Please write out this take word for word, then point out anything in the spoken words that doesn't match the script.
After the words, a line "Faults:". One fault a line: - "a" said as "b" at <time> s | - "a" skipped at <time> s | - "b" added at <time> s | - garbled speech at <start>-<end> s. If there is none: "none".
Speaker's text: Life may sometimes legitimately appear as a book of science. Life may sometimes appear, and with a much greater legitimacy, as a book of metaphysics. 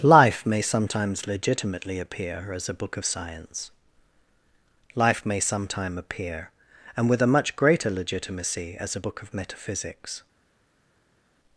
Life may sometimes legitimately appear as a book of science. Life may sometime appear, and with a much greater legitimacy, as a book of metaphysics.
Faults:
- "sometimes" said as "sometime" at 5.4 s